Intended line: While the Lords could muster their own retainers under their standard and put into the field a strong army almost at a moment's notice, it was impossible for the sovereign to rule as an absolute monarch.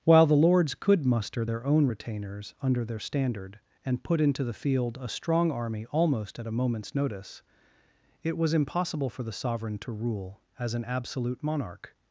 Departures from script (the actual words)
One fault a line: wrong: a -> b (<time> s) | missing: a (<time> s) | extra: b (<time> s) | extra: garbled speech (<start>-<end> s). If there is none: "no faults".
no faults